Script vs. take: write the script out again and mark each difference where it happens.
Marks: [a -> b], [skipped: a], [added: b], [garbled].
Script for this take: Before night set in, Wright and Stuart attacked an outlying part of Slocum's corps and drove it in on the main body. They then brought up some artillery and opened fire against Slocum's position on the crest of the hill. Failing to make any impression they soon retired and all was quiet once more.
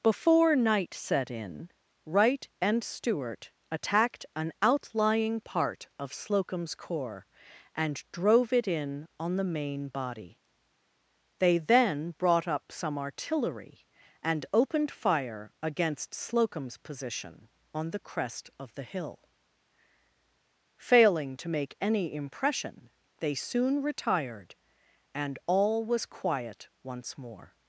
Before night set in, Wright and Stuart attacked an outlying part of Slocum's corps and drove it in on the main body. They then brought up some artillery and opened fire against Slocum's position on the crest of the hill. Failing to make any impression they soon retired and all was quiet once more.